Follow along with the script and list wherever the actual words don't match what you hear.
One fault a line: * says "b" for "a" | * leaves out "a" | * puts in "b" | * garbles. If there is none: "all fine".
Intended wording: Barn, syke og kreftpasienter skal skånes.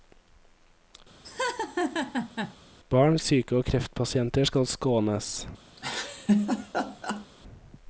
all fine